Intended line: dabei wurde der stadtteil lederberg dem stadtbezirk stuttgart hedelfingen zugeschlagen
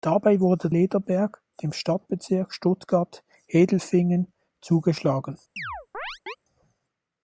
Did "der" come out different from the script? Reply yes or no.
yes